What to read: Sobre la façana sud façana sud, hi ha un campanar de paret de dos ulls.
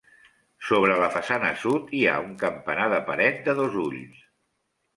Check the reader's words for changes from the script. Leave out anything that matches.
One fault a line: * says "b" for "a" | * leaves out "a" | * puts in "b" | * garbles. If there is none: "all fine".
* leaves out "façana sud"